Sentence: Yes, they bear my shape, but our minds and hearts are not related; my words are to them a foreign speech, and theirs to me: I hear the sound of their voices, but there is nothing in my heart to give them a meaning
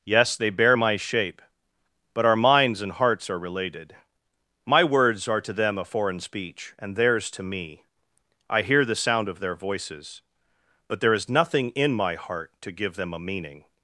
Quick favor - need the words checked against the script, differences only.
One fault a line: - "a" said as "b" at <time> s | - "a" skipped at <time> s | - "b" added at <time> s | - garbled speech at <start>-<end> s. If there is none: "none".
- "not" skipped at 3.4 s